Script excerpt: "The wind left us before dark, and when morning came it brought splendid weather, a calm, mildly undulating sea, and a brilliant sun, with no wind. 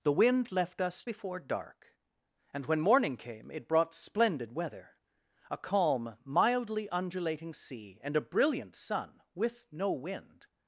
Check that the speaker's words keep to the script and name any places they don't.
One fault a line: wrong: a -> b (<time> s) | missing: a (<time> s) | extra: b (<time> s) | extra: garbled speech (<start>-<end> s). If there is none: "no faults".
no faults